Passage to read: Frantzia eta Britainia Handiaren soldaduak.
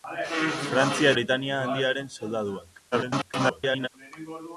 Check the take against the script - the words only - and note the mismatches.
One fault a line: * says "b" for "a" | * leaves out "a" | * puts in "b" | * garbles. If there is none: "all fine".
* leaves out "eta"
* garbles